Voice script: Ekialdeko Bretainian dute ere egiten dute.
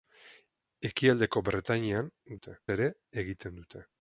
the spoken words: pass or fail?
pass